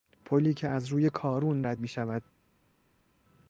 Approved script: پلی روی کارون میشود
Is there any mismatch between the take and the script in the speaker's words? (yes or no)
yes